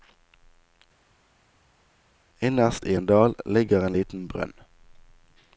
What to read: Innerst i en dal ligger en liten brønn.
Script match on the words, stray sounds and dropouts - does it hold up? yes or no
yes